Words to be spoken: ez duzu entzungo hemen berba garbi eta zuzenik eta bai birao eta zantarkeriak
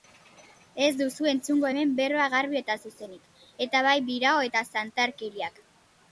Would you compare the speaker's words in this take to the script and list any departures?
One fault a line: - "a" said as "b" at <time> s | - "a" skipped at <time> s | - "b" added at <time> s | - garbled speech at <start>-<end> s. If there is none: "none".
none